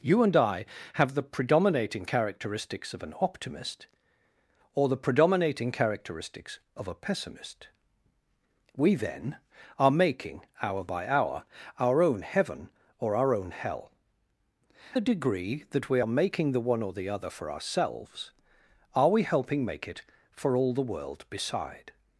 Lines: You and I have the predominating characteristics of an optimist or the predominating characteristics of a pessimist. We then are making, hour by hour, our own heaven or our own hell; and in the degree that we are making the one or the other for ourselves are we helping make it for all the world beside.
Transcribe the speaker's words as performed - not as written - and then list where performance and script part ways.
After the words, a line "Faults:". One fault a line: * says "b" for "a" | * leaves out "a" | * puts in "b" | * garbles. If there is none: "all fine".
You and I have the predominating characteristics of an optimist or the predominating characteristics of a pessimist. We then are making, hour by hour, our own heaven or our own hell; the degree that we are making the one or the other for ourselves are we helping make it for all the world beside.
Faults:
* leaves out "and in"